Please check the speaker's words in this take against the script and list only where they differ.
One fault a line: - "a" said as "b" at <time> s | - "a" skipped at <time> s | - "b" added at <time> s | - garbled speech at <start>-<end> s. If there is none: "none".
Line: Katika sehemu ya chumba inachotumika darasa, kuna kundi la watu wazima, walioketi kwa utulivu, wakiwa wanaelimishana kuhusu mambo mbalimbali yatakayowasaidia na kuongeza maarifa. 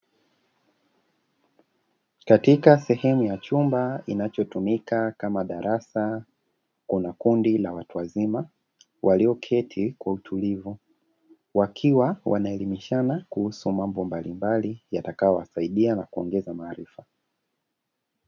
- "kama" added at 5.1 s